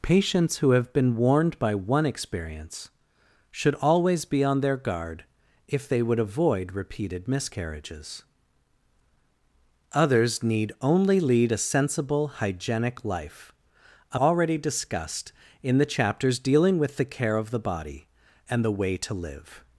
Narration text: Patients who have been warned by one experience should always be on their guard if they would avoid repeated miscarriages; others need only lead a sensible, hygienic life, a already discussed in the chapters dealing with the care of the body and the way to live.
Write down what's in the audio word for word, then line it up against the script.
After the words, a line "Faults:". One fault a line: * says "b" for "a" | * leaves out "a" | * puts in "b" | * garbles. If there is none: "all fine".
Patients who have been warned by one experience should always be on their guard if they would avoid repeated miscarriages; others need only lead a sensible, hygienic life, a already discussed in the chapters dealing with the care of the body and the way to live.
Faults:
all fine